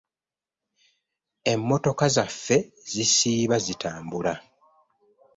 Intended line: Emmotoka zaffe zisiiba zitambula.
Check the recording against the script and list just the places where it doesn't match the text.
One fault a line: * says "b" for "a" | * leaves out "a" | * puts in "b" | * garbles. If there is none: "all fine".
all fine